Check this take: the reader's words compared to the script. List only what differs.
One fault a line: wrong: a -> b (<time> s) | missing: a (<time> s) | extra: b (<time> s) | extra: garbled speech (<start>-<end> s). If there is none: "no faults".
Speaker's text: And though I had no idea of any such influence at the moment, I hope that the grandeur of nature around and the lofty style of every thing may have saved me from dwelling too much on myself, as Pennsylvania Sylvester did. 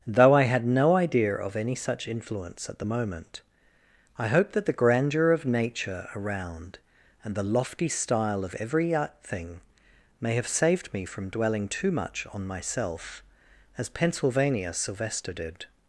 missing: And (0.1 s)